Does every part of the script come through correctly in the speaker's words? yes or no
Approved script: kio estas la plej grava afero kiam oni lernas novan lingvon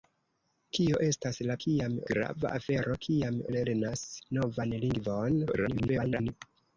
no